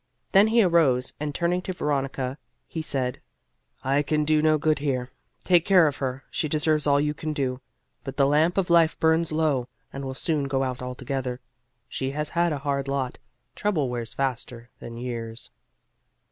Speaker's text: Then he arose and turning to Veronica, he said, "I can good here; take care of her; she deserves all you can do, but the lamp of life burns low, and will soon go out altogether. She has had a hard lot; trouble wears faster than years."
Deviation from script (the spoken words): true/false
true